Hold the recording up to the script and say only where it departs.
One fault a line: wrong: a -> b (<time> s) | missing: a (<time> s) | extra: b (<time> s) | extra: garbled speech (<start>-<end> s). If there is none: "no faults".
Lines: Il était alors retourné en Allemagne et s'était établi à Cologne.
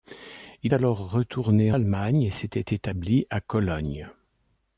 missing: était (0.7 s)
missing: en (1.7 s)